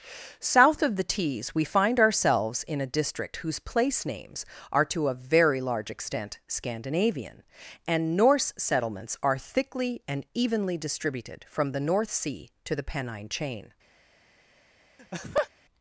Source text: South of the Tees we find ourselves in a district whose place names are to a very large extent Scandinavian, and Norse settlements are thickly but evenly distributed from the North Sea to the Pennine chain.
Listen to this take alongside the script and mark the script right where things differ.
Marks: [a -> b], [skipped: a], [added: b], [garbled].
South of the Tees we find ourselves in a district whose place names are to a very large extent Scandinavian, and Norse settlements are thickly [but -> and] evenly distributed from the North Sea to the Pennine chain.